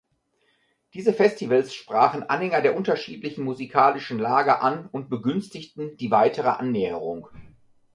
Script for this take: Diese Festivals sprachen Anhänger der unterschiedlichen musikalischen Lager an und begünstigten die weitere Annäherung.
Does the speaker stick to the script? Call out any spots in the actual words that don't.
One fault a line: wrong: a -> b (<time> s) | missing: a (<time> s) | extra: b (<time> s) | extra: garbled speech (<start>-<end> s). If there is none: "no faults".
no faults